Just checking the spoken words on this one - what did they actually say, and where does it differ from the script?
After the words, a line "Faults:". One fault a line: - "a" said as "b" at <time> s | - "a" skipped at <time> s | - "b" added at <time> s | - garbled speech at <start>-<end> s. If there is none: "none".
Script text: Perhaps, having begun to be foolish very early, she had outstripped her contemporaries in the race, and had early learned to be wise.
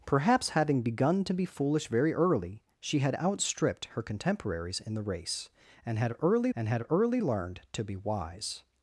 Perhaps, having begun to be foolish very early, she had outstripped her contemporaries in the race, and had early and had early learned to be wise.
Faults:
- "and had early" added at 6.5 s